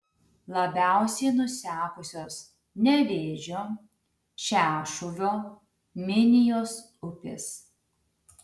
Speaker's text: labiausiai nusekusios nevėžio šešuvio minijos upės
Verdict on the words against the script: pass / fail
pass